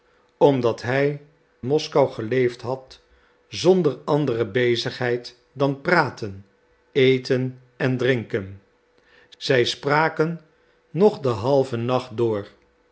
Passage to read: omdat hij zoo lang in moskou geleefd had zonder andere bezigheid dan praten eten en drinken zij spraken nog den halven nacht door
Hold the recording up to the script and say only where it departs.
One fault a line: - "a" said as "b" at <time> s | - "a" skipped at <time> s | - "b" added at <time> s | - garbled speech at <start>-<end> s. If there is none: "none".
- "zoo lang in" skipped at 1.2 s